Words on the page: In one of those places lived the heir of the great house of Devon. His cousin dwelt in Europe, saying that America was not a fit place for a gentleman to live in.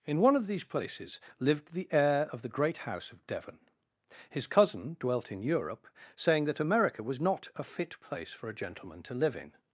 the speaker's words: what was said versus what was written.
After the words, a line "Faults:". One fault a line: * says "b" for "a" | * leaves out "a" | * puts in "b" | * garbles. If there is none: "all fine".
In one of these places lived the heir of the great house of Devon. His cousin dwelt in Europe, saying that America was not a fit place for a gentleman to live in.
Faults:
* says "these" for "those"